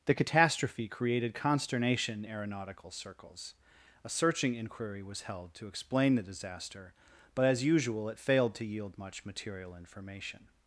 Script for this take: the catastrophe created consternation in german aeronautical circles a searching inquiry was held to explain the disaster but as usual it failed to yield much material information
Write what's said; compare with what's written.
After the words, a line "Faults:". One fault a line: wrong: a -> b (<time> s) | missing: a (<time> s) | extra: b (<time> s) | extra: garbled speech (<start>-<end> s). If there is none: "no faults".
the catastrophe created consternation aeronautical circles a searching inquiry was held to explain the disaster but as usual it failed to yield much material information
Faults:
missing: in german (2.2 s)